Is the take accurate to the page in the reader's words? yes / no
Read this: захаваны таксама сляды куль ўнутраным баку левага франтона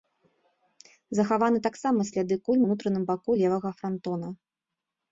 yes